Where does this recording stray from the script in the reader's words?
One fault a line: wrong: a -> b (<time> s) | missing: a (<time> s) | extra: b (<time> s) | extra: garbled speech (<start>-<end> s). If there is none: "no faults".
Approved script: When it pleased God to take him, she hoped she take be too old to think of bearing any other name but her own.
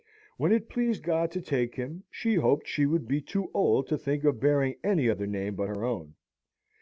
wrong: take -> would (2.9 s)